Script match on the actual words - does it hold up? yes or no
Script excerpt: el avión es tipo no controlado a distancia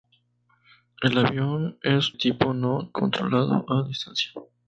yes